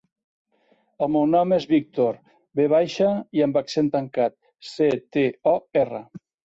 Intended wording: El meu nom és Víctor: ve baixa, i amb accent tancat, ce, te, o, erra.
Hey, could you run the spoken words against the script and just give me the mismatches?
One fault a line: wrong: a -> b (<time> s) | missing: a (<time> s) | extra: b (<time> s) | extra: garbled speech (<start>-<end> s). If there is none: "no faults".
no faults